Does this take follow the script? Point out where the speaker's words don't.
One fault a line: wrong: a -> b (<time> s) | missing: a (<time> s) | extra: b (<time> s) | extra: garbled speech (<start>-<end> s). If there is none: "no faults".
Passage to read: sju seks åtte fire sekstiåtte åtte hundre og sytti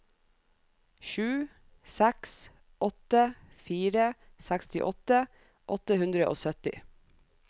no faults